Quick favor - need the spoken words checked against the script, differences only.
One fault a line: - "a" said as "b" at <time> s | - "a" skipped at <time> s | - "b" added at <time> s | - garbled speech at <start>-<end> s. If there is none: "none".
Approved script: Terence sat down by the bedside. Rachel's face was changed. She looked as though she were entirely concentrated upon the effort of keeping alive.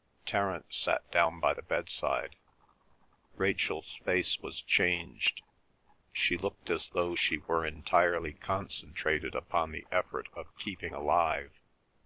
none